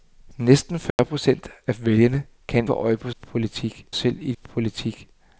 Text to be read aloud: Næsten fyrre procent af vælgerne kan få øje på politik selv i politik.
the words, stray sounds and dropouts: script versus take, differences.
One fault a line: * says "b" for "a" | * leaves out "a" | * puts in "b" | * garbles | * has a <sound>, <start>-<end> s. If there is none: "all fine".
* has a dropout, 0.9-1.0 s